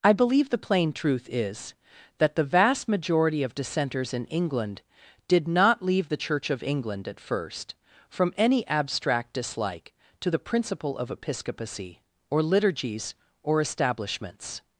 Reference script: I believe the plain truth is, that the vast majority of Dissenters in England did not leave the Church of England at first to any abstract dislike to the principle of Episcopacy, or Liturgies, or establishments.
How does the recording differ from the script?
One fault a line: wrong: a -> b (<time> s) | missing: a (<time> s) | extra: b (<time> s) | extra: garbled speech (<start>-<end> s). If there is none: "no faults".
wrong: to -> from (8.1 s)